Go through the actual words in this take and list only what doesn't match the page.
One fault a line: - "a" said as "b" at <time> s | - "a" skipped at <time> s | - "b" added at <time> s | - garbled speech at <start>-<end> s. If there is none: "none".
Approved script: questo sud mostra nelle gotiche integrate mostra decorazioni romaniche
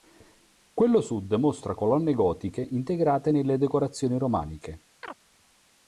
- "questo" said as "quello" at 0.7 s
- "nelle" said as "colonne" at 1.7 s
- "mostra" said as "nelle" at 3.3 s